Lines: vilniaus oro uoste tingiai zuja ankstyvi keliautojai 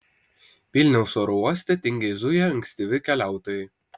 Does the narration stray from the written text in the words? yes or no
no